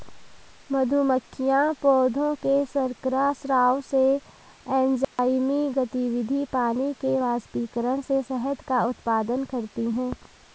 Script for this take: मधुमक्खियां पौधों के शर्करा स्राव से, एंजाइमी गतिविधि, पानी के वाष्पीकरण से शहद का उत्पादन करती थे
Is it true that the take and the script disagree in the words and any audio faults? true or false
true